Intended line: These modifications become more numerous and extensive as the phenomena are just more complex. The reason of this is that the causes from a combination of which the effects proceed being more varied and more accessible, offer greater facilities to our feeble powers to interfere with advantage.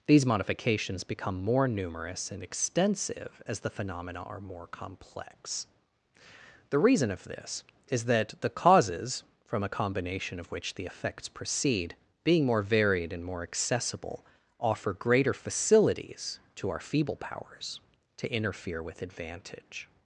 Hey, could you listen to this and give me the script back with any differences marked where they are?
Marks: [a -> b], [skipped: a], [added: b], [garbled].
These modifications become more numerous and extensive as the phenomena are [skipped: just] more complex. The reason of this is that the causes from a combination of which the effects proceed being more varied and more accessible, offer greater facilities to our feeble powers to interfere with advantage.